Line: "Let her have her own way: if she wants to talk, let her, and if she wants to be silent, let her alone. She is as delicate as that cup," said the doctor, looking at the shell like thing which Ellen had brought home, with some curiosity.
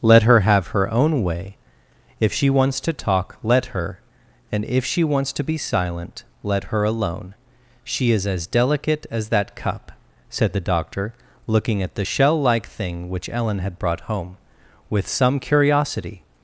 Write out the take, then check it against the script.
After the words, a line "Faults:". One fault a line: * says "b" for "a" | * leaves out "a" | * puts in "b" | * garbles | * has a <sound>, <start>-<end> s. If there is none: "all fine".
"Let her have her own way: if she wants to talk, let her, and if she wants to be silent, let her alone. She is as delicate as that cup," said the doctor, looking at the shell like thing which Ellen had brought home, with some curiosity.
Faults:
all fine